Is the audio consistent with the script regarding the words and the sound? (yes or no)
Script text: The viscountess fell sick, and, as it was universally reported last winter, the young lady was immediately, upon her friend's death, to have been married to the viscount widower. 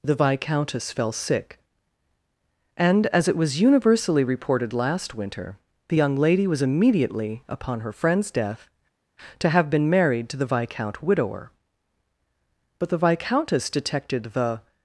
no